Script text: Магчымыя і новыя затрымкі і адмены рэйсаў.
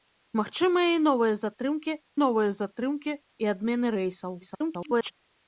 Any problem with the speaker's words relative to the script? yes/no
yes